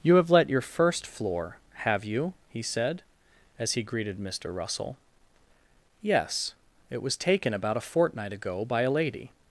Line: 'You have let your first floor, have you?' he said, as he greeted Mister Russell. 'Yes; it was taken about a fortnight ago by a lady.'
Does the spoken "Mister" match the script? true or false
true